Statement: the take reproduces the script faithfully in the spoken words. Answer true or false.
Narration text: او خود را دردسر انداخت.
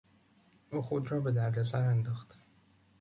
false